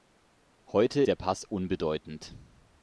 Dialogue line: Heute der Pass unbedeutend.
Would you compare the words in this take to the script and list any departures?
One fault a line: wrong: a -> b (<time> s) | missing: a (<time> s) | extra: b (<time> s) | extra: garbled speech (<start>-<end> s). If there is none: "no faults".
no faults